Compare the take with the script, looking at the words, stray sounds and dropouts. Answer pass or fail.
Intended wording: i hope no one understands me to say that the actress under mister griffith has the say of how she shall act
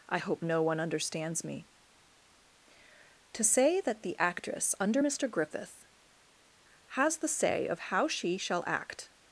pass